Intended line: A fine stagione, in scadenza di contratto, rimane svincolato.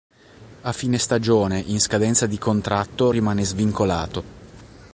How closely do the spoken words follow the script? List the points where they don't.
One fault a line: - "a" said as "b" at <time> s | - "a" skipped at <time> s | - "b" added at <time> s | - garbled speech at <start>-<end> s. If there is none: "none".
none